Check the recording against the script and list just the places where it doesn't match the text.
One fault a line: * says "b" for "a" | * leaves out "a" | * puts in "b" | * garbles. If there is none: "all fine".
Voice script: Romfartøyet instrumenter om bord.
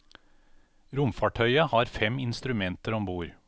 * puts in "har fem"